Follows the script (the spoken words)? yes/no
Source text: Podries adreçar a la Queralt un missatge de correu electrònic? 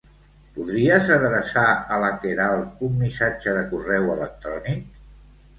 yes